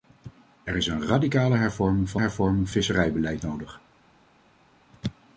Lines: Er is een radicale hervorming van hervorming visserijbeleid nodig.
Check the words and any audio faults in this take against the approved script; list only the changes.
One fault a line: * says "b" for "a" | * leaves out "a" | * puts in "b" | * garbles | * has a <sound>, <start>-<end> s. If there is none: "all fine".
all fine